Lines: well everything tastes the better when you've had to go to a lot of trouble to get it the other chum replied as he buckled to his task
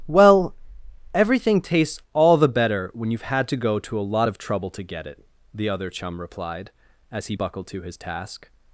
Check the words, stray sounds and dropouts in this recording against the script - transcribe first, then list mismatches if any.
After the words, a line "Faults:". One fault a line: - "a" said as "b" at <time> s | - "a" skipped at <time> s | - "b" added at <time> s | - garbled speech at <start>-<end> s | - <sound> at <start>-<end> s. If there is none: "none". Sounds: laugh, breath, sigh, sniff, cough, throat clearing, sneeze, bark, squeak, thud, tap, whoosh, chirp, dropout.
well everything tastes all the better when you've had to go to a lot of trouble to get it the other chum replied as he buckled to his task
Faults:
- "all" added at 2.1 s